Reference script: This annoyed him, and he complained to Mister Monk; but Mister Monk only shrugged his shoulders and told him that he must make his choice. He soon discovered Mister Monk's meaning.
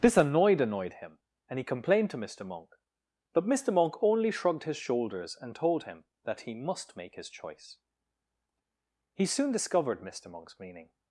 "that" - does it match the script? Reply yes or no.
yes